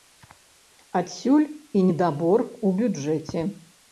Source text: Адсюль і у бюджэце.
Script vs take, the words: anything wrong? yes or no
yes